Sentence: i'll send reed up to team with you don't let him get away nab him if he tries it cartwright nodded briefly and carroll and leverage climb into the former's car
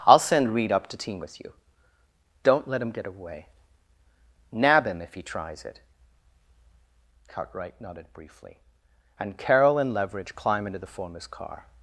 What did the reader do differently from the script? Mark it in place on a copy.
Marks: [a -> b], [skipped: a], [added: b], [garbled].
i'll send reed up to team with you don't let him get away nab him if he tries it cartwright nodded briefly and carroll and leverage climb into the former's car